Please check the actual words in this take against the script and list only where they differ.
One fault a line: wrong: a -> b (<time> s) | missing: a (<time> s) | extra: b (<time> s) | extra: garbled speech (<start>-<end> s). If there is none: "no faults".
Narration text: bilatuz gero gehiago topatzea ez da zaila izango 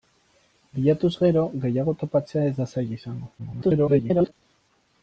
extra: garbled speech (3.4-4.3 s)